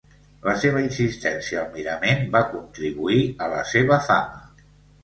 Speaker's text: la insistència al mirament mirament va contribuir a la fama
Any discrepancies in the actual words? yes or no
yes